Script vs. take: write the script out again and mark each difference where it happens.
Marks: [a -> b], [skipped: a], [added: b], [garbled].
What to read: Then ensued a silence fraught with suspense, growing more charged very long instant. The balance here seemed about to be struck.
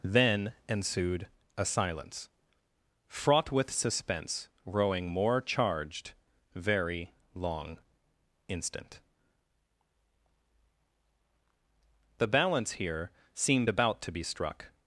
Then ensued a silence fraught with suspense, growing more charged very long instant. The balance here seemed about to be struck.